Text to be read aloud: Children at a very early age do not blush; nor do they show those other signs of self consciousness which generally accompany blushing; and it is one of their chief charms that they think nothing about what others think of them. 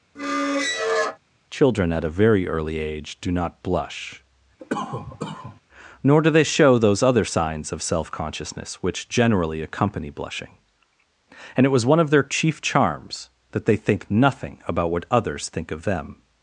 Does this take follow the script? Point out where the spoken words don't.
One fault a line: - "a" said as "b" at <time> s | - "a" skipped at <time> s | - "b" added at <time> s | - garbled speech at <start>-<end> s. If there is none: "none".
- "is" said as "was" at 11.7 s